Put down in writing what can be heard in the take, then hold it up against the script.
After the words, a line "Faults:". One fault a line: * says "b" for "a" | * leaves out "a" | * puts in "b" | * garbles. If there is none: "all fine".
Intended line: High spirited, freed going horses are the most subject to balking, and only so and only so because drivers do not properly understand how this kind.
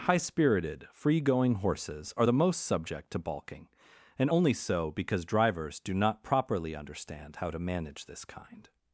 High spirited, free going horses are the most subject to balking, and only so because drivers do not properly understand how to manage this kind.
Faults:
* says "free" for "freed"
* leaves out "and only so"
* puts in "to manage"